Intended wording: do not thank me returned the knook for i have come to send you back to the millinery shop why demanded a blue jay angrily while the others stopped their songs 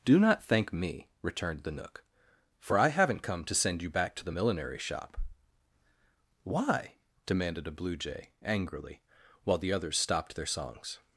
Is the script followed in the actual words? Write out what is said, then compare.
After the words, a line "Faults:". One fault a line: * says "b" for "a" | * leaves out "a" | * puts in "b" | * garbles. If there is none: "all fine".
do not thank me returned the knook for i haven't come to send you back to the millinery shop why demanded a blue jay angrily while the others stopped their songs
Faults:
* says "haven't" for "have"